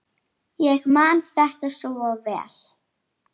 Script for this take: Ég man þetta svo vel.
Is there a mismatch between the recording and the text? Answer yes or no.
no